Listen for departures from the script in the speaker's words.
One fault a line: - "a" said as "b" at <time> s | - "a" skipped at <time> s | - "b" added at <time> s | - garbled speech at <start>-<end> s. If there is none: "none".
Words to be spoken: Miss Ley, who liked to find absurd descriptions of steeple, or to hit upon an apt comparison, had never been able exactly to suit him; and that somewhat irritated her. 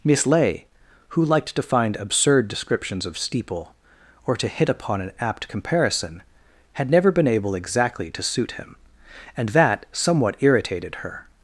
none